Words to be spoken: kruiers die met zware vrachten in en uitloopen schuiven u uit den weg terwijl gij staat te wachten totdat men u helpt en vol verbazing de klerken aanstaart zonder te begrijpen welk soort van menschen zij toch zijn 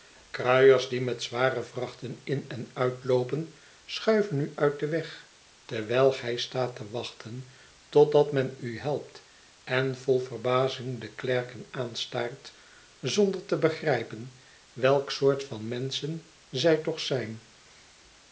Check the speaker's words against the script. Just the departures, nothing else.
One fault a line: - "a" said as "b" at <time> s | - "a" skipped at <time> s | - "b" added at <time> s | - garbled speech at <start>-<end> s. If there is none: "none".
none